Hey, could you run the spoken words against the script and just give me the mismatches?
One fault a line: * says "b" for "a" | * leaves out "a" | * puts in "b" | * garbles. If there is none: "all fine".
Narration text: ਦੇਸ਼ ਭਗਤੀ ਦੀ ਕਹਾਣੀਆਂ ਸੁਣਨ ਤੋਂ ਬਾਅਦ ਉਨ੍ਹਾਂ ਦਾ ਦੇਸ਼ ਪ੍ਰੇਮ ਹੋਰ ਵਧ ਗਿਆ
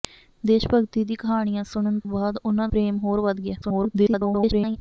* leaves out "ਤੋਂ"
* leaves out "ਦਾ ਦੇਸ਼"
* garbles